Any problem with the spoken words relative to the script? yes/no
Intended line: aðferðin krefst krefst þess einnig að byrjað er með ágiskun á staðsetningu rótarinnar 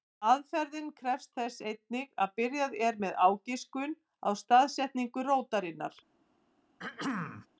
yes